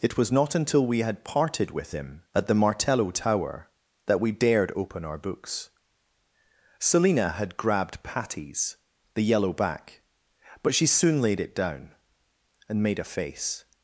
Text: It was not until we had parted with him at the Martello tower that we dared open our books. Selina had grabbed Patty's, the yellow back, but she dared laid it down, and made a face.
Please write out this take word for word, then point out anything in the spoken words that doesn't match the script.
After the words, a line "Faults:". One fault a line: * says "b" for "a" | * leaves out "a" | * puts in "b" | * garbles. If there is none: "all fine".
It was not until we had parted with him at the Martello tower that we dared open our books. Selina had grabbed Patty's, the yellow back, but she soon laid it down, and made a face.
Faults:
* says "soon" for "dared"